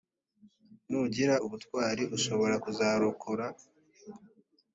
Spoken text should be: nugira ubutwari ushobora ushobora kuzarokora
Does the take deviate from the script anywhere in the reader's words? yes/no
yes